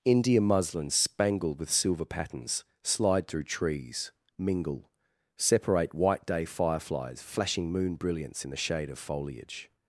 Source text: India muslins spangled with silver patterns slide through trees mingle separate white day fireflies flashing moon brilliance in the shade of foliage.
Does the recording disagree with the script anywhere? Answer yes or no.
no